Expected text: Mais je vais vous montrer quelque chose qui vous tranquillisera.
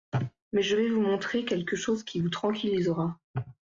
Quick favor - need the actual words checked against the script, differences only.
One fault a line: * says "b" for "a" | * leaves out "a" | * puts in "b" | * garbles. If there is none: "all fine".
all fine